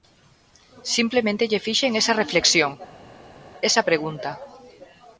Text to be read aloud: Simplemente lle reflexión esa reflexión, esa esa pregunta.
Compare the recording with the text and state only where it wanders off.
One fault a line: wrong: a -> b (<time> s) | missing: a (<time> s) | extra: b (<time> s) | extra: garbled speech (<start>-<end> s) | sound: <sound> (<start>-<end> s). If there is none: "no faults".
wrong: reflexión -> fixen (1.7 s)
missing: esa (3.8 s)